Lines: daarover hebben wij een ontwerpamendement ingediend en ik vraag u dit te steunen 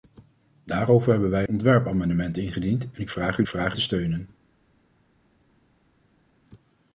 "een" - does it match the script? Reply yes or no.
no